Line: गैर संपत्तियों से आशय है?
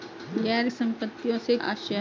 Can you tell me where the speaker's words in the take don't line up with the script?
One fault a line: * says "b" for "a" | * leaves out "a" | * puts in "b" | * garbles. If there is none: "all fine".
all fine